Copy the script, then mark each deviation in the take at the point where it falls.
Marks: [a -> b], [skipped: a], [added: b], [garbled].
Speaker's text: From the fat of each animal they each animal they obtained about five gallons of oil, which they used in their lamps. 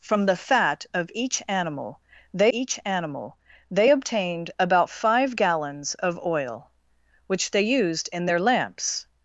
From the fat of each animal they each animal they obtained about five gallons of oil, which they used in their lamps.